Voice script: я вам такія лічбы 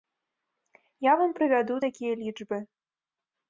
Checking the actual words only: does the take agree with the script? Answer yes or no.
no